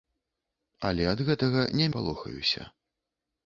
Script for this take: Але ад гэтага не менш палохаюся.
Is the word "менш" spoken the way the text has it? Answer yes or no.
no